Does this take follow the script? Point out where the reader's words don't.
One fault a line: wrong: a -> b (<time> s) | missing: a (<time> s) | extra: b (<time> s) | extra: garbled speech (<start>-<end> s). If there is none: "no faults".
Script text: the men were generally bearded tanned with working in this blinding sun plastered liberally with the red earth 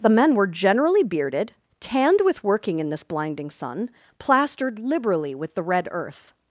no faults